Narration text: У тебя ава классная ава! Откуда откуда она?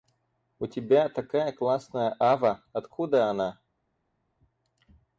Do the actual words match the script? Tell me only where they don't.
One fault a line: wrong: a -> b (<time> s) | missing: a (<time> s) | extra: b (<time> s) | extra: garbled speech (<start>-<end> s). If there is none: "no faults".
wrong: ава -> такая (1.1 s)
missing: откуда (3.3 s)